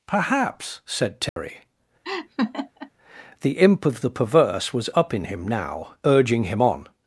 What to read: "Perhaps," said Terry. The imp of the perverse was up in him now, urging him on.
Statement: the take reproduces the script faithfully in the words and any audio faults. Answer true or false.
false